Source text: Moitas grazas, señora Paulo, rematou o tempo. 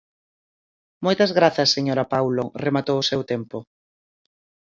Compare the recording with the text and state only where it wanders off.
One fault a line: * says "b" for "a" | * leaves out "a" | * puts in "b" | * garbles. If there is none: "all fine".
* puts in "seu"